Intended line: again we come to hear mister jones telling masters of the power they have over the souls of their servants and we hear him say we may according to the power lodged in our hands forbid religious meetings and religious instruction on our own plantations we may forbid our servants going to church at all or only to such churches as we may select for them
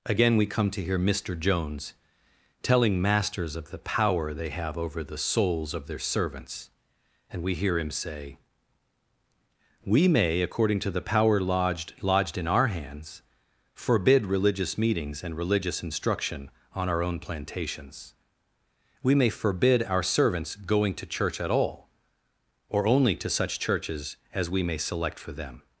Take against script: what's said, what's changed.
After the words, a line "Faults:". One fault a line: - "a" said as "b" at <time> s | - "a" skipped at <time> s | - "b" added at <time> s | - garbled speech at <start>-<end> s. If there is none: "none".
again we come to hear mister jones telling masters of the power they have over the souls of their servants and we hear him say we may according to the power lodged lodged in our hands forbid religious meetings and religious instruction on our own plantations we may forbid our servants going to church at all or only to such churches as we may select for them
Faults:
- "lodged" added at 12.0 s